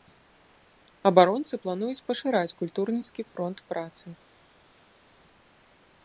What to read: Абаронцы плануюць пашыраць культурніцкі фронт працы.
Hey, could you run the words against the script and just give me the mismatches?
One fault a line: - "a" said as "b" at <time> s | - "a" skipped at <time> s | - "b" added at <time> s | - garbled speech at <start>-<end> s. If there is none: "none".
none